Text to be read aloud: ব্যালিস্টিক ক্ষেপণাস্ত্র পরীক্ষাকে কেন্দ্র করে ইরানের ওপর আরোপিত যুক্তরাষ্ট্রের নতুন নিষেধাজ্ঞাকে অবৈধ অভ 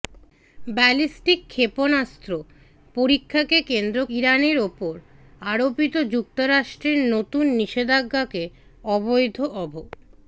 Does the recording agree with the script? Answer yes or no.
no